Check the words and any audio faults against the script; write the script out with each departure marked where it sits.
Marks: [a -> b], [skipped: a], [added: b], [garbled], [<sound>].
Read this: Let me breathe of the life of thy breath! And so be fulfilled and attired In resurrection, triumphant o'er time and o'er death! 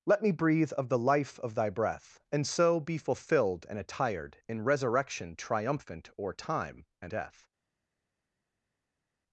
Let me breathe of the life of thy breath! And so be fulfilled and attired In resurrection, triumphant o'er time and [skipped: o'er] death!